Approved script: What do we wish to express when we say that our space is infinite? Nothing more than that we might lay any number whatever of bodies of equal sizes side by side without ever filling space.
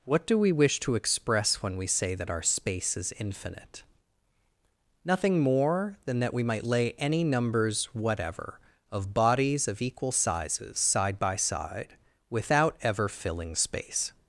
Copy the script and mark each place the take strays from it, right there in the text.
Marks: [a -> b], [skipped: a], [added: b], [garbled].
What do we wish to express when we say that our space is infinite? Nothing more than that we might lay any [number -> numbers] whatever of bodies of equal sizes side by side without ever filling space.